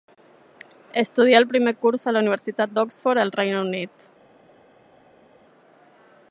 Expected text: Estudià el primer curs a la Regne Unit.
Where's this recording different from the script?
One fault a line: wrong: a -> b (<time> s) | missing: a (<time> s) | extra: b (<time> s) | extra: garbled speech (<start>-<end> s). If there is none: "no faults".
extra: Universitat d'Oxford al (2.3 s)